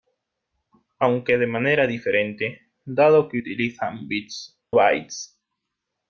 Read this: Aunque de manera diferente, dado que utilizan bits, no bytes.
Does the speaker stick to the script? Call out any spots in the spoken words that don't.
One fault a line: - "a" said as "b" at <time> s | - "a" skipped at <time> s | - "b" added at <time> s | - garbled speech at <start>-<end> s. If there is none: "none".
- "no" skipped at 4.6 s